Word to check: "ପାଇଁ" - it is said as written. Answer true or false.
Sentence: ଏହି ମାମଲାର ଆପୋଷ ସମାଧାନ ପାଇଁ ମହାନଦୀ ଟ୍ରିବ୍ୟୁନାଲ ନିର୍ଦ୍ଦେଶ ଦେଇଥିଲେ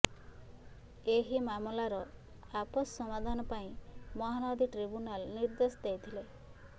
true